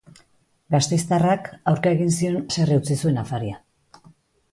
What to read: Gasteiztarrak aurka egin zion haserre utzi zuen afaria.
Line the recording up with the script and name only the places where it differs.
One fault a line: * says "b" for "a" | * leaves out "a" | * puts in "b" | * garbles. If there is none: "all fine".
all fine